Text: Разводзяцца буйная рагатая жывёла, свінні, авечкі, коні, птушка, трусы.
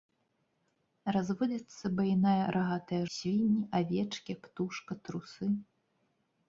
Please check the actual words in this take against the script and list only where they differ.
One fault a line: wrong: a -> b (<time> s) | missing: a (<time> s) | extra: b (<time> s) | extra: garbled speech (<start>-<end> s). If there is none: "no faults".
missing: жывёла (3.0 s)
missing: коні (4.3 s)